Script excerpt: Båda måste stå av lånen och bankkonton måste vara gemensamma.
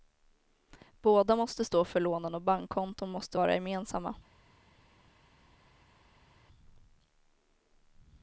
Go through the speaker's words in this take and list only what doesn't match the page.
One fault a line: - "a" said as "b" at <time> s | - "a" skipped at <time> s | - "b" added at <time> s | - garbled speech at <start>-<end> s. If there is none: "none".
- "av" said as "för" at 1.9 s